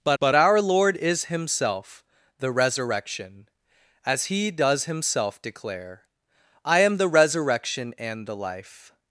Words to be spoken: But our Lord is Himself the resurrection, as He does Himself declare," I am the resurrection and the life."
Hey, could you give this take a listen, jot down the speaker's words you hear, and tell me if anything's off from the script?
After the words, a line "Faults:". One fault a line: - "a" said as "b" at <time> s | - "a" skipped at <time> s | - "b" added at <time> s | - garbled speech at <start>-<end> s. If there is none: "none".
But but our Lord is Himself the resurrection, as He does Himself declare," I am the resurrection and the life."
Faults:
- "but" added at 0.2 s